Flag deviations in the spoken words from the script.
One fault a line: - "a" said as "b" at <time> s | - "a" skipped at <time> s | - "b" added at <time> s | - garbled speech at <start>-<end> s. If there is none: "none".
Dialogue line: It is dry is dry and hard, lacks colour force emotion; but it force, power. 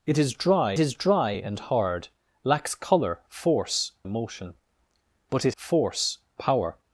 none